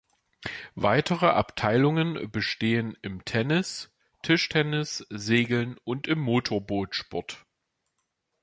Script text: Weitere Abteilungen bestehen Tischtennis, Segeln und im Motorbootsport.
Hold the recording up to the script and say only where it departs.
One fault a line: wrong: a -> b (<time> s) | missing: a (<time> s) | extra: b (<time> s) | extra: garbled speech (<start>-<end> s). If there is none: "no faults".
extra: im Tennis (3.0 s)